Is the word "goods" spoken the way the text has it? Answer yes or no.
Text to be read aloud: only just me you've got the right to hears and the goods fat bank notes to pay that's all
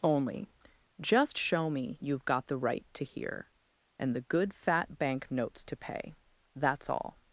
no